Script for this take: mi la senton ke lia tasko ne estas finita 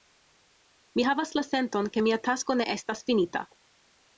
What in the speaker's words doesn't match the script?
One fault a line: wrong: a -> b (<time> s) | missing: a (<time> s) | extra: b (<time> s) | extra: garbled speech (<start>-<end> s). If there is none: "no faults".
extra: havas (1.1 s)
wrong: lia -> mia (2.1 s)